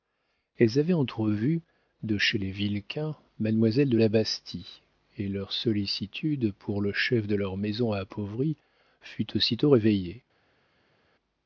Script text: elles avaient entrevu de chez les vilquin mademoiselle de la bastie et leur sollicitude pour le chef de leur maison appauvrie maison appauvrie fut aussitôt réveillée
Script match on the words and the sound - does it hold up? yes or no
no